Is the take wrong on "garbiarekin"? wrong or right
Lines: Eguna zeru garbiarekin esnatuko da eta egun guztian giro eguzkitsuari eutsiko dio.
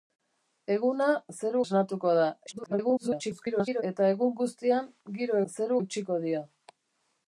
wrong